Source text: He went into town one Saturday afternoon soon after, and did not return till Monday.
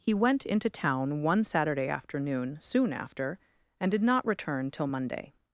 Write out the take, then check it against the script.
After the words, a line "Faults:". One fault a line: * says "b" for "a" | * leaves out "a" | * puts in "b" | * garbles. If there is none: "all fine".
He went into town one Saturday afternoon soon after, and did not return till Monday.
Faults:
all fine